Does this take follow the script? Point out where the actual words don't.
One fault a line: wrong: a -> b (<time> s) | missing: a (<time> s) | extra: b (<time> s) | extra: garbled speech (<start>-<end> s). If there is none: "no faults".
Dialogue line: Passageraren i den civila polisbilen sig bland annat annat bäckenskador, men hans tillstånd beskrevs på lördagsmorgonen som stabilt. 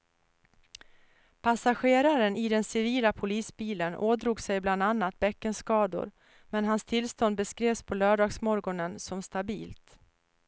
extra: ådrog (3.9 s)
missing: annat (5.2 s)